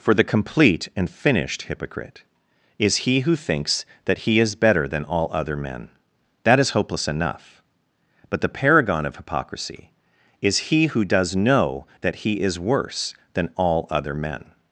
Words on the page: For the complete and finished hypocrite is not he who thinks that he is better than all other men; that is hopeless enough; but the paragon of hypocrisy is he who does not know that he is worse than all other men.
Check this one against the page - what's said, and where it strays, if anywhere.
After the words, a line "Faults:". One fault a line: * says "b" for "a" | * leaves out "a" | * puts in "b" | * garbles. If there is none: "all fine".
For the complete and finished hypocrite is he who thinks that he is better than all other men; that is hopeless enough; but the paragon of hypocrisy is he who does know that he is worse than all other men.
Faults:
* leaves out "not"
* leaves out "not"